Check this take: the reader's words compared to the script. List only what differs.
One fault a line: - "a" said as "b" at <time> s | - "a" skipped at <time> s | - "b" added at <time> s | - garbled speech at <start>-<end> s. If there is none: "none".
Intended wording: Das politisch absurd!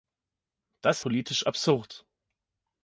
none